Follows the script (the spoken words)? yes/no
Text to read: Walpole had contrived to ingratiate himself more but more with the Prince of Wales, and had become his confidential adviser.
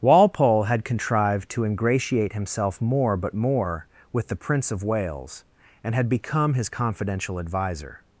yes